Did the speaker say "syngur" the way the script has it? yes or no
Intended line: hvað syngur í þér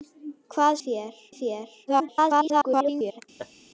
no